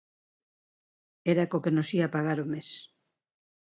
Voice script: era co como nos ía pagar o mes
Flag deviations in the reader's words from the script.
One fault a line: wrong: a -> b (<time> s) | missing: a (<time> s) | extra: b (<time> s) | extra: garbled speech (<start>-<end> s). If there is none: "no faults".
wrong: como -> que (1.6 s)